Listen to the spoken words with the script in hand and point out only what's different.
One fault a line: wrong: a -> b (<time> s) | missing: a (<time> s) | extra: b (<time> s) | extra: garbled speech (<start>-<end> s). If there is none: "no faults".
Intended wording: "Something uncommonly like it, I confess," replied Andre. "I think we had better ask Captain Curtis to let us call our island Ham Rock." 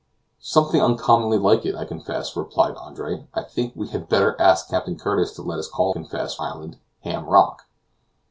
wrong: our -> confess (5.9 s)